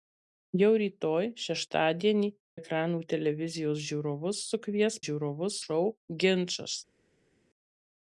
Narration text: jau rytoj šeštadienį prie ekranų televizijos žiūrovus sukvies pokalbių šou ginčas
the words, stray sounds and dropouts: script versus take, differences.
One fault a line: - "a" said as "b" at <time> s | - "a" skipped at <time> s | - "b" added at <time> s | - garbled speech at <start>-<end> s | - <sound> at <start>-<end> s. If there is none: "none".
- "prie" skipped at 2.3 s
- "pokalbių" said as "žiūrovus" at 5.0 s